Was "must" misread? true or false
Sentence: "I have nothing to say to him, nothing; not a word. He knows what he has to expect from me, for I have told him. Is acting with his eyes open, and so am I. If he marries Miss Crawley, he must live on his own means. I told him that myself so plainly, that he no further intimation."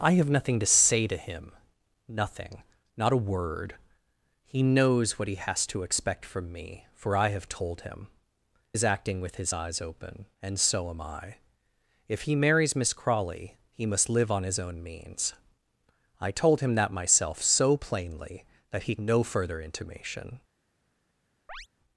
false